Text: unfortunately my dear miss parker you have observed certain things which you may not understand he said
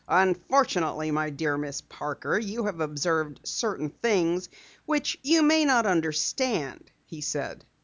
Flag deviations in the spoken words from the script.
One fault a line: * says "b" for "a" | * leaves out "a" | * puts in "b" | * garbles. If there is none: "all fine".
all fine